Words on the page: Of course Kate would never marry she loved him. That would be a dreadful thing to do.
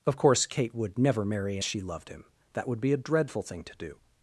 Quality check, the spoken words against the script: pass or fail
pass